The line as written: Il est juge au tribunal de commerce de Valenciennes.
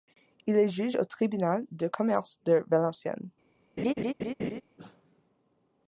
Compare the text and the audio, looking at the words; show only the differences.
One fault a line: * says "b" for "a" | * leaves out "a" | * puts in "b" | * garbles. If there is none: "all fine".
all fine